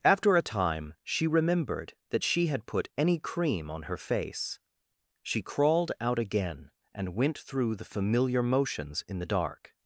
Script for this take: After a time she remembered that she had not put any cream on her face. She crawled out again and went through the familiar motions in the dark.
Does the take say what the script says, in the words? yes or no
no